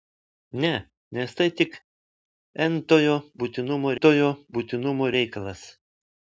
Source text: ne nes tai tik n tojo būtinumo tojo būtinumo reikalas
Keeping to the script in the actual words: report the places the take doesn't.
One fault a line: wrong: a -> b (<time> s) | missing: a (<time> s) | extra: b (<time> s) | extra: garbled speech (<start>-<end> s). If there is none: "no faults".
no faults